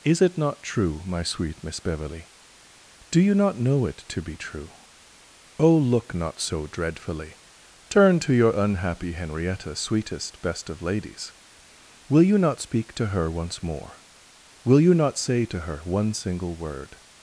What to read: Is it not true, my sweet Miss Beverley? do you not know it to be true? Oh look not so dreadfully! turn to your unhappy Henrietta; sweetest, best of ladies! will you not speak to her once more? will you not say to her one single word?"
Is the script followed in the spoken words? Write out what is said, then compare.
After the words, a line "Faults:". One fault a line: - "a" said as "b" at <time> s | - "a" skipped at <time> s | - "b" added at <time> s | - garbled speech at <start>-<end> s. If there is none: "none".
Is it not true, my sweet Miss Beverley? do you not know it to be true? Oh look not so dreadfully! turn to your unhappy Henrietta; sweetest, best of ladies! will you not speak to her once more? will you not say to her one single word?"
Faults:
none